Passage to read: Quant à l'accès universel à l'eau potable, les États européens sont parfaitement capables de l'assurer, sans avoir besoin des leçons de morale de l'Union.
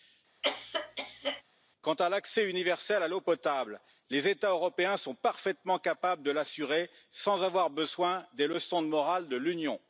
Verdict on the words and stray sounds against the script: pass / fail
fail